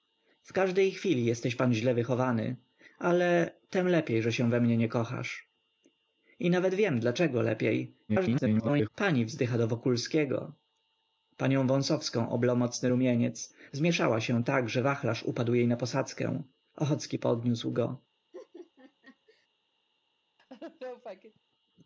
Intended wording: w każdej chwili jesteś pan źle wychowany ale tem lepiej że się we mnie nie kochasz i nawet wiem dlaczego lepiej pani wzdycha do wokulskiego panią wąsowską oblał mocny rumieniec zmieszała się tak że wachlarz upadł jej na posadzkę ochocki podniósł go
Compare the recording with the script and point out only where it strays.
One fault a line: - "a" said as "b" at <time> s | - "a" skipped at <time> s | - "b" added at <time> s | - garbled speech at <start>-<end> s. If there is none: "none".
- garbled speech at 8.1-8.9 s